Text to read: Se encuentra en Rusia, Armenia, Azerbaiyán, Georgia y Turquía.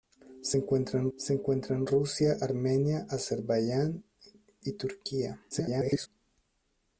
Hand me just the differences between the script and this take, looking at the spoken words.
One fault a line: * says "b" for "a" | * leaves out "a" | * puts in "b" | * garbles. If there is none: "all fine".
* puts in "se encuentra en"
* leaves out "Georgia"
* garbles